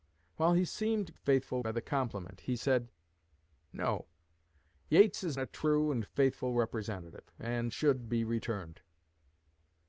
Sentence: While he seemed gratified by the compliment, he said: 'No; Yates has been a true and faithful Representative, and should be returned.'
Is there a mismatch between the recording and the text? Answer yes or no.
yes